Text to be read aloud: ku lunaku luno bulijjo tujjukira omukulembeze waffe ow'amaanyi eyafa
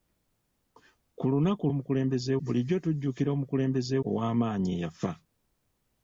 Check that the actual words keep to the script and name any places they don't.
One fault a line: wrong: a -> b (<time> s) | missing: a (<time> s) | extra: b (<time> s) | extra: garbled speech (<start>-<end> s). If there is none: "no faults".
wrong: luno -> omukulembeze (1.7 s)
missing: waffe (4.0 s)